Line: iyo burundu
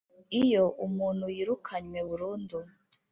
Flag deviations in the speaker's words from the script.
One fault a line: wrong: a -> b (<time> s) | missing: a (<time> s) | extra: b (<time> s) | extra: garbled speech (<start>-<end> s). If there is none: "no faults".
extra: umuntu yirukanywe (0.9 s)